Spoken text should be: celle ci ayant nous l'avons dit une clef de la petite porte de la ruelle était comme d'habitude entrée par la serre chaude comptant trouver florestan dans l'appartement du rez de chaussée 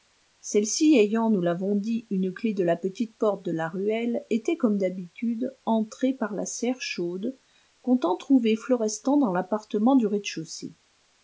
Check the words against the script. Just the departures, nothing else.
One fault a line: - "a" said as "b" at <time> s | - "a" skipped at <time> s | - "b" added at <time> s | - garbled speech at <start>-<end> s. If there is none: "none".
none